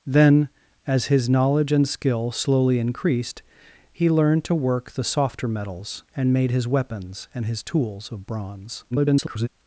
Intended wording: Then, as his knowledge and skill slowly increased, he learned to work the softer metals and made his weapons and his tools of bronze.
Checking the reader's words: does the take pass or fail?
fail